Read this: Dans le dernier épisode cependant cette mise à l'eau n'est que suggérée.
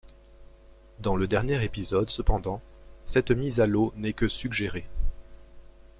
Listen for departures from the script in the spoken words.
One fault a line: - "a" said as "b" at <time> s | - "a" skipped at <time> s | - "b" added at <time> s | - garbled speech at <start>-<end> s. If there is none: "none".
none